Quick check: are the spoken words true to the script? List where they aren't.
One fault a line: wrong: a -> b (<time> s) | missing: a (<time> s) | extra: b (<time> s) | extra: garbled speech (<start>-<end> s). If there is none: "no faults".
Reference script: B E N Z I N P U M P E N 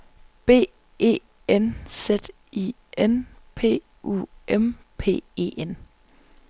no faults